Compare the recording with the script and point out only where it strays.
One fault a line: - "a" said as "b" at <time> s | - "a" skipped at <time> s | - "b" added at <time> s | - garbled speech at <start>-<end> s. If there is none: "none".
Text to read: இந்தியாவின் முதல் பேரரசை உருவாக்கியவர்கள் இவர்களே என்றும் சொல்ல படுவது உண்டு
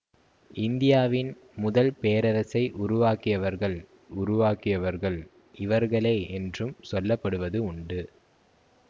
- "உருவாக்கியவர்கள்" added at 4.1 s